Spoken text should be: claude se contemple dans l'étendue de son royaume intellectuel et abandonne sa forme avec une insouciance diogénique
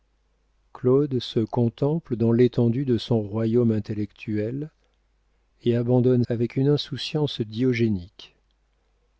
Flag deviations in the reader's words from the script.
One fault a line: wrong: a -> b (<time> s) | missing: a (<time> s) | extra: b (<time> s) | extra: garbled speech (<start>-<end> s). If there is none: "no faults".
missing: sa forme (6.2 s)